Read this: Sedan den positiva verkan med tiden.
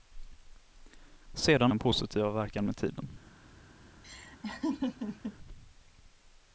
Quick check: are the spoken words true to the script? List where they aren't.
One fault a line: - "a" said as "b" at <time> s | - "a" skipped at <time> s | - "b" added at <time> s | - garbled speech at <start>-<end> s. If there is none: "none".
none